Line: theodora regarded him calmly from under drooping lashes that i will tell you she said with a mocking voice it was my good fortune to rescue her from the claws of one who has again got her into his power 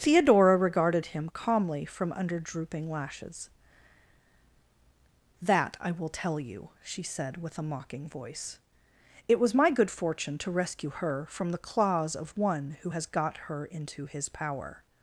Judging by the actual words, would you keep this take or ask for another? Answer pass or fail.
fail